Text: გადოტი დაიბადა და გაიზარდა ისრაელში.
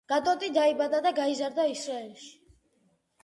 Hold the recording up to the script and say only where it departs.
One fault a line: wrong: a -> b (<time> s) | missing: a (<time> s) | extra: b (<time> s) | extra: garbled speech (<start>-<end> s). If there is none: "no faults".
no faults